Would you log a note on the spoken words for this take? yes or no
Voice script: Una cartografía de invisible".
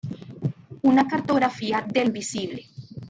no